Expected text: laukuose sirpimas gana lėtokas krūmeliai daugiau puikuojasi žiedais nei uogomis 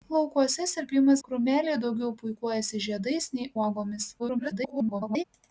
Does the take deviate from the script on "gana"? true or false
true